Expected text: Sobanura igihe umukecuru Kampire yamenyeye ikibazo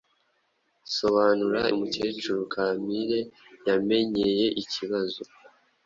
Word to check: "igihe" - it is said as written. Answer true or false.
false